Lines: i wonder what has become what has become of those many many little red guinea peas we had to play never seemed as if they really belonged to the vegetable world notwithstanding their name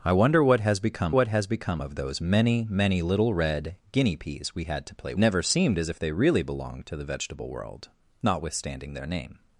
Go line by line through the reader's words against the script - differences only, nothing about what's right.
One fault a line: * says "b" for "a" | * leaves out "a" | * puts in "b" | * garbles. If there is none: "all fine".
all fine